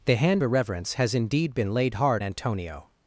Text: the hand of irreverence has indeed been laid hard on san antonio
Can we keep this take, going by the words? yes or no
no